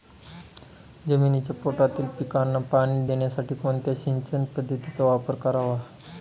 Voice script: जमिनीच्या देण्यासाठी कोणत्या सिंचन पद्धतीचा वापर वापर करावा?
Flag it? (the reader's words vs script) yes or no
yes